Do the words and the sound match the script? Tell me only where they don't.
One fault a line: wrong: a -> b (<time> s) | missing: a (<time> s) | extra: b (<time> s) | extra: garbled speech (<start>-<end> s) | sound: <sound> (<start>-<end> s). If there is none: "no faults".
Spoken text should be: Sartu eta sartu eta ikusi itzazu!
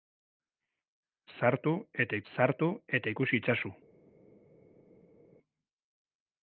no faults